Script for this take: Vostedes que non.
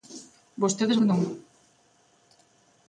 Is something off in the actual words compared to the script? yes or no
no